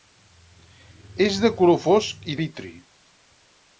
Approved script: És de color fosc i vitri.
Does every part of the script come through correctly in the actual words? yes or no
yes